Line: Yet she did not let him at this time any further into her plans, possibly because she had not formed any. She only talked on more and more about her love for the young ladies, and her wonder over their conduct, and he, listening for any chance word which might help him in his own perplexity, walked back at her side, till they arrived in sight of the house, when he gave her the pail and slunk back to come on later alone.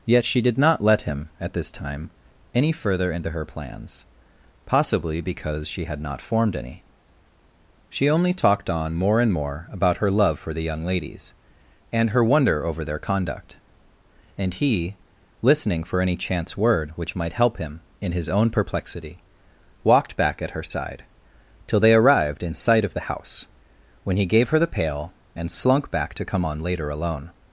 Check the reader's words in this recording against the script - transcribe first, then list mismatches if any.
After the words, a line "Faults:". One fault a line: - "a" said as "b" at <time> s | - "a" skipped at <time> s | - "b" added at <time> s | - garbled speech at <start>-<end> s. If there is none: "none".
Yet she did not let him at this time any further into her plans, possibly because she had not formed any. She only talked on more and more about her love for the young ladies, and her wonder over their conduct, and he, listening for any chance word which might help him in his own perplexity, walked back at her side, till they arrived in sight of the house, when he gave her the pail and slunk back to come on later alone.
Faults:
none